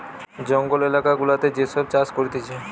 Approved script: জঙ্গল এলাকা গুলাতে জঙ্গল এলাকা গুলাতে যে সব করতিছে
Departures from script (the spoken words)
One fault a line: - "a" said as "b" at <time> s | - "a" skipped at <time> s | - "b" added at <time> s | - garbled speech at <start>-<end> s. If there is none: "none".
- "জঙ্গল এলাকা গুলাতে" skipped at 1.5 s
- "চাষ" added at 1.9 s